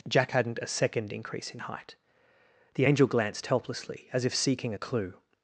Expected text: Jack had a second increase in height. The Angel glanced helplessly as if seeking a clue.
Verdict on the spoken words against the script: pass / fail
fail